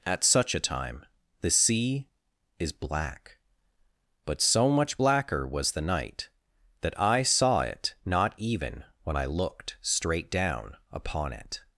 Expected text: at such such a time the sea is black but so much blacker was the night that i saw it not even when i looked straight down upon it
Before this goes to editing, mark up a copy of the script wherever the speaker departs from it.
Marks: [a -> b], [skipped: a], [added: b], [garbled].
at such [skipped: such] a time the sea is black but so much blacker was the night that i saw it not even when i looked straight down upon it